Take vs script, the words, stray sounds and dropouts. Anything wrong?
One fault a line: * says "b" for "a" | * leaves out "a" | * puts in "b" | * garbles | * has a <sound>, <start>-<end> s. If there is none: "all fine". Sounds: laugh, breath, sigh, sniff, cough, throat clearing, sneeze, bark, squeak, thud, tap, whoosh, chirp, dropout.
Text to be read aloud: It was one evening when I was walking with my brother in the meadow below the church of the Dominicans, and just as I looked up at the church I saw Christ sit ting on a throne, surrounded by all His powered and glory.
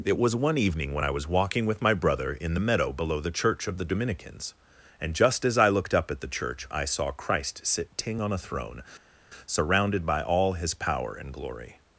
* says "power" for "powered"